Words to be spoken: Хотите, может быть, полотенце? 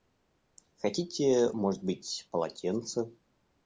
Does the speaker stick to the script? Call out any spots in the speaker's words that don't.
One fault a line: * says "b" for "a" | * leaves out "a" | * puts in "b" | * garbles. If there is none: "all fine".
all fine